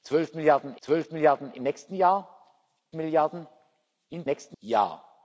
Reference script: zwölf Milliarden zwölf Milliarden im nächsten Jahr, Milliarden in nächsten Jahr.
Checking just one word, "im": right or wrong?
right